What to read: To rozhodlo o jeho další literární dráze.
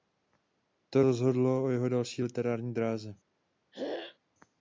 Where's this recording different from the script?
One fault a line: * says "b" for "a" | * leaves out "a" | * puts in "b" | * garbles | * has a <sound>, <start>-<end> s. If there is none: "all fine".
* has a throat clearing, 3.7-4.2 s